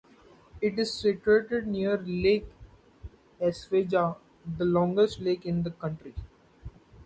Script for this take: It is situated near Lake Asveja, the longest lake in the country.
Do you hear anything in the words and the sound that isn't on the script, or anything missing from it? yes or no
no